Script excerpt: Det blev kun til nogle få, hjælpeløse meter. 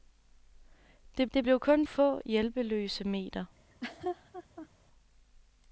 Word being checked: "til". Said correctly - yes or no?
no